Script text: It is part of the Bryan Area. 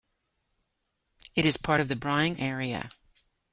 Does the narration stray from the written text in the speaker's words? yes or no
no